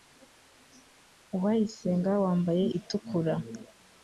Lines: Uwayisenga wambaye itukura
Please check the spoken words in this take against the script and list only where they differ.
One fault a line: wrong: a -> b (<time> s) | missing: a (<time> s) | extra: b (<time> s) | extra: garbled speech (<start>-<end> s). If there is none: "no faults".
no faults